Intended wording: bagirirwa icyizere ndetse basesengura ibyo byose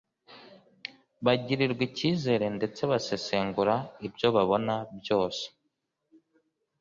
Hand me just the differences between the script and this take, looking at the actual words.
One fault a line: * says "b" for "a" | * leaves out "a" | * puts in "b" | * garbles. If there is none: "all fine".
* puts in "babona"